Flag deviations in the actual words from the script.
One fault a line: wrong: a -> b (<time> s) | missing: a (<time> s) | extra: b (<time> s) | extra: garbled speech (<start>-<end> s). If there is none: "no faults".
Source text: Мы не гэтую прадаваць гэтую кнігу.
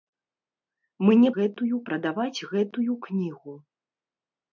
no faults